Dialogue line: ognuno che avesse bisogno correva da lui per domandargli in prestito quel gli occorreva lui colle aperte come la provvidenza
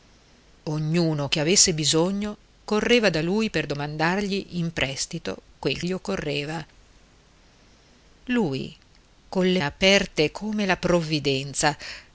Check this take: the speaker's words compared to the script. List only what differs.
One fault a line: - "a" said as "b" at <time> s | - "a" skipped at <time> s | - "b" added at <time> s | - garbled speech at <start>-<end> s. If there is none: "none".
none